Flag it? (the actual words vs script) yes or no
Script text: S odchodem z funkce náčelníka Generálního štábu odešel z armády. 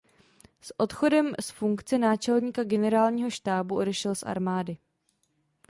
no